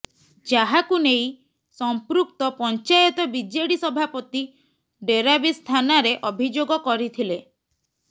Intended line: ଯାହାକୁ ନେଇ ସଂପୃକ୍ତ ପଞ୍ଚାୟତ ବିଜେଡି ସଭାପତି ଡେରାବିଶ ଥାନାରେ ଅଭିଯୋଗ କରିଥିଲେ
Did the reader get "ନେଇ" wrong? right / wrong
right